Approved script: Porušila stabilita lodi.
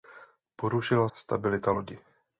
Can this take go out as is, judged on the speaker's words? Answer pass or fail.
pass